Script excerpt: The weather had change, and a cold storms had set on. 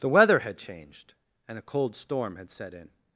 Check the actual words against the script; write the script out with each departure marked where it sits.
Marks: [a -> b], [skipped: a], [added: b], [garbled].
The weather had [change, -> changed] and a cold [storms -> storm] had set [on. -> in]